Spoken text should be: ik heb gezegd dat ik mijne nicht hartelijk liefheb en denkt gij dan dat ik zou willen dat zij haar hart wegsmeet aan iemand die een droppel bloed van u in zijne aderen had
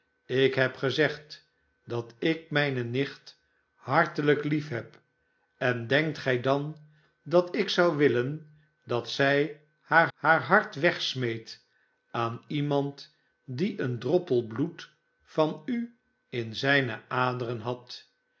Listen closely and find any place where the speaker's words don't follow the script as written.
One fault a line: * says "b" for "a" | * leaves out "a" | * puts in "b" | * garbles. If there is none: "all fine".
* puts in "haar"